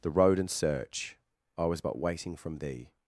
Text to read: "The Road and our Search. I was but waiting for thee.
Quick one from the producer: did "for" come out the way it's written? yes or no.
no